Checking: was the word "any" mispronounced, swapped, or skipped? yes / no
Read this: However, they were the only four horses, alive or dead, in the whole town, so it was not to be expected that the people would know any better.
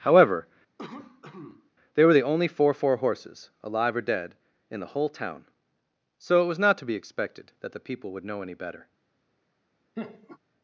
no